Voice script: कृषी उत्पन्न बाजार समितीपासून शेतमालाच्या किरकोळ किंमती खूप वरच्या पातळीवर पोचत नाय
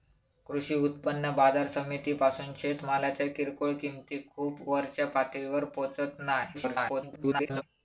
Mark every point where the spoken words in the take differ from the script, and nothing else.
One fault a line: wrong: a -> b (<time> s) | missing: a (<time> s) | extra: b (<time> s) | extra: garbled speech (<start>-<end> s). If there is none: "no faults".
extra: garbled speech (6.5-7.6 s)